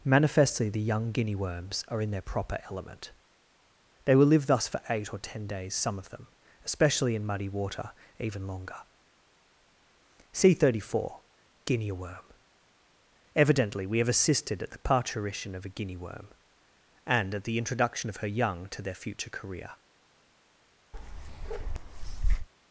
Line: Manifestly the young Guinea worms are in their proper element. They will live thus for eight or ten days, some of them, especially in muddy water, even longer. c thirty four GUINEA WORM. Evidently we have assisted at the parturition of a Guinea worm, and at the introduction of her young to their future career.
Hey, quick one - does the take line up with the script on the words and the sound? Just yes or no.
no